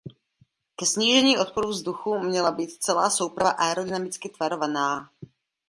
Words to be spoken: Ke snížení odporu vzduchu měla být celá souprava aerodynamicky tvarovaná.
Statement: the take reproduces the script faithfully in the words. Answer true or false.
true